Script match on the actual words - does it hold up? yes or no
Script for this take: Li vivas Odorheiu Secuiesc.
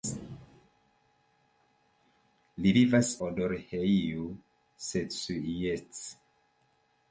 yes